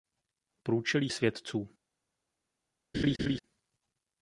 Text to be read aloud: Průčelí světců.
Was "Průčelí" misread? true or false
false